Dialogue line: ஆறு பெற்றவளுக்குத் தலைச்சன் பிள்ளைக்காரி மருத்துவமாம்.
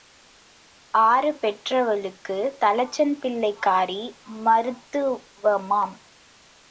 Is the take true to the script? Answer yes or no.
yes